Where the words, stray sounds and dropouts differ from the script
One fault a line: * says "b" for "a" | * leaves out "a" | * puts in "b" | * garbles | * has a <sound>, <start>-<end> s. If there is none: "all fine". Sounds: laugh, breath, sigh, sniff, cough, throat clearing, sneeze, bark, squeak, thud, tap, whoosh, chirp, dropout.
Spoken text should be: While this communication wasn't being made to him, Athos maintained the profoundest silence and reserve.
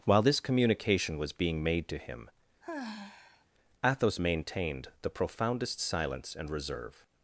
* says "was" for "wasn't"
* has a sigh, 2.6-3.5 s